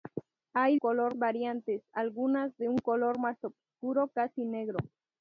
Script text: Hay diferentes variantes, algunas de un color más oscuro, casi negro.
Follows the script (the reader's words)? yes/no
no